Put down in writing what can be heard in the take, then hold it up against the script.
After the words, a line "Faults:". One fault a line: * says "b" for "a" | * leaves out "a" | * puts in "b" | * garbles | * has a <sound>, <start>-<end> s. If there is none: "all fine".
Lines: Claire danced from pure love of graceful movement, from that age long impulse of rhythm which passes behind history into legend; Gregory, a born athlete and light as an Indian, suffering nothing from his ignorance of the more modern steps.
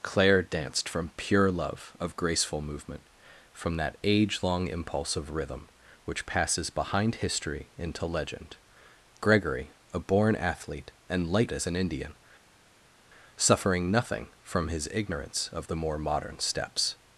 Claire danced from pure love of graceful movement, from that age long impulse of rhythm which passes behind history into legend; Gregory, a born athlete and light as an Indian, suffering nothing from his ignorance of the more modern steps.
Faults:
all fine